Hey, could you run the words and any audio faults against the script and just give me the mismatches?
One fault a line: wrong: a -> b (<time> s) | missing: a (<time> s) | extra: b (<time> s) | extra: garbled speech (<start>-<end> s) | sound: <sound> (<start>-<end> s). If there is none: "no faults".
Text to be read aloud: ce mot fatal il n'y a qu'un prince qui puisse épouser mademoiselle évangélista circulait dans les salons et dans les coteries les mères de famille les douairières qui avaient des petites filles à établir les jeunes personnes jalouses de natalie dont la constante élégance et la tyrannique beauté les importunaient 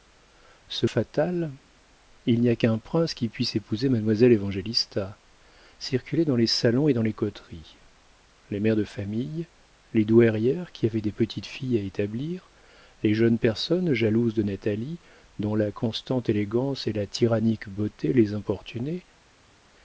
missing: mot (0.8 s)